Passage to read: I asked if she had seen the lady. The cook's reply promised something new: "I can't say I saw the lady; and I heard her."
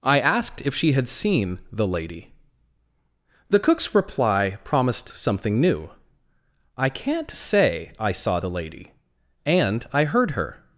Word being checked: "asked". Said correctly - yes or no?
yes